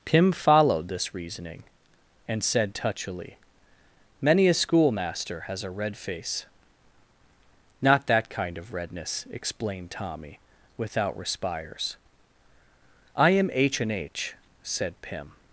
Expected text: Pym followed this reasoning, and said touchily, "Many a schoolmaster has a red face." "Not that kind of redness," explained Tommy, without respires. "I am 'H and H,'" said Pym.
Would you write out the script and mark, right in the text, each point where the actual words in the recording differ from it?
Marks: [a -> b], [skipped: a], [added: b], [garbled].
Pym followed this reasoning, and said touchily, "Many a schoolmaster has a red face." "Not that kind of redness," explained Tommy, without respires. "I am 'H and H,'" said Pym.